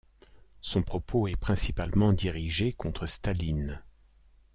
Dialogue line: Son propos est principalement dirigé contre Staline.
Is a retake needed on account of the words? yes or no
no